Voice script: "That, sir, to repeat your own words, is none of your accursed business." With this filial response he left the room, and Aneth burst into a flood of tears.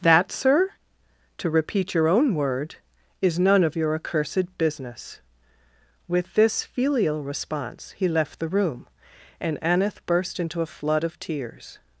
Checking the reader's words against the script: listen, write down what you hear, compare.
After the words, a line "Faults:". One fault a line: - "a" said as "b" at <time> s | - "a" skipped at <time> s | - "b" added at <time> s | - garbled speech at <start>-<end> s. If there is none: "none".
"That, sir, to repeat your own word, is none of your accursed business." With this filial response he left the room, and Aneth burst into a flood of tears.
Faults:
- "words" said as "word" at 2.3 s